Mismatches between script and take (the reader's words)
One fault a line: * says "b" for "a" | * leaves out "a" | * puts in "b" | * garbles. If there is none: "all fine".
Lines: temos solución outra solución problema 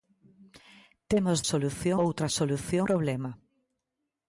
all fine